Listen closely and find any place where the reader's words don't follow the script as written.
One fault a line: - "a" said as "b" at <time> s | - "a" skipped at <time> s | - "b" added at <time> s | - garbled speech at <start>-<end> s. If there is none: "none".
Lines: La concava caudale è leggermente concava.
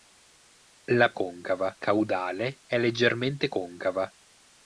none